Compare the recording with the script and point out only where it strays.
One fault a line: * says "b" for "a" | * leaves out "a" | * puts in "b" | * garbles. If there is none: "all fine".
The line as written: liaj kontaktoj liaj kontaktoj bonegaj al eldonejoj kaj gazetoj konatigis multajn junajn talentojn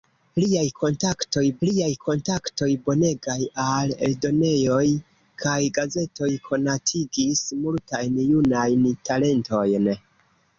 all fine